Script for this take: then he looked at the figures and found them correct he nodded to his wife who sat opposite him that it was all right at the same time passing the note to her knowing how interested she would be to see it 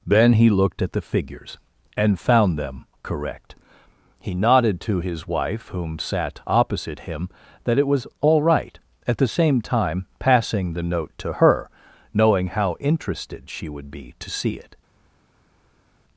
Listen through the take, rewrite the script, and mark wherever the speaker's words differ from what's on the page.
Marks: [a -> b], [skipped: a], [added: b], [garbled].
then he looked at the figures and found them correct he nodded to his wife [who -> whom] sat opposite him that it was all right at the same time passing the note to her knowing how interested she would be to see it